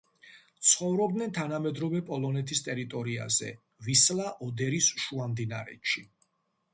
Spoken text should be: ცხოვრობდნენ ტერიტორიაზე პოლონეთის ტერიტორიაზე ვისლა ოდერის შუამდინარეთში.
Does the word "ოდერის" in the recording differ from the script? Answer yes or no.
no